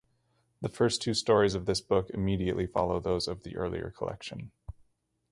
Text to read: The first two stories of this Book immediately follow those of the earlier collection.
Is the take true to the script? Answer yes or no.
yes